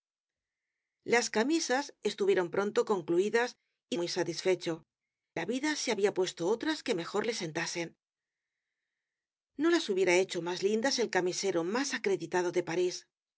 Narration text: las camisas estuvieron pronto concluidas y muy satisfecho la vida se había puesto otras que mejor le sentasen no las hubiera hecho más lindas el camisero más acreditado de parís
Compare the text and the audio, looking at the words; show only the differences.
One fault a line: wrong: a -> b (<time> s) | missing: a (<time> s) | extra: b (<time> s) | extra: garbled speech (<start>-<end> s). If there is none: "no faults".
no faults